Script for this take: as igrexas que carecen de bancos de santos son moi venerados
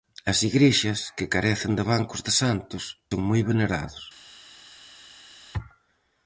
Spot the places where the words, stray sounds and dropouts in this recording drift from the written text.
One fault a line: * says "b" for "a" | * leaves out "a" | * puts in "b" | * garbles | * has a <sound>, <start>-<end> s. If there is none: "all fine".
all fine